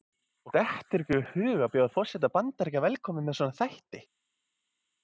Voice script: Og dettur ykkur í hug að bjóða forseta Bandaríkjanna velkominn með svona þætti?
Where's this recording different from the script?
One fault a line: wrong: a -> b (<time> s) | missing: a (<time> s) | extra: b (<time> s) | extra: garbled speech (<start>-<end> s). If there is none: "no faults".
no faults